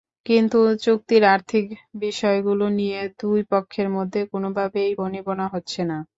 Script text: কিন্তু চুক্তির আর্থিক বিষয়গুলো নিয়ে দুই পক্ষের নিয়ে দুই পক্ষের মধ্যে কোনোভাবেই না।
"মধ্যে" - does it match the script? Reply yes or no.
no